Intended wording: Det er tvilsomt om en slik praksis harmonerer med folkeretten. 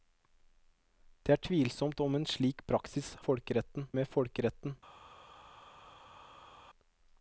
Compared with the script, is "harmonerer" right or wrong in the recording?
wrong